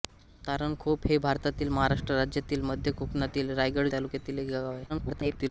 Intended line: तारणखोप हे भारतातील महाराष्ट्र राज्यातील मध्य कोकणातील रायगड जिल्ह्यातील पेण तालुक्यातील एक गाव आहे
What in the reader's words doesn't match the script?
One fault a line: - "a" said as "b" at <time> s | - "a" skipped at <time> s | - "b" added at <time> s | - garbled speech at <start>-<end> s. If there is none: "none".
- "जिल्ह्यातील पेण" skipped at 3.9 s
- garbled speech at 4.9-5.5 s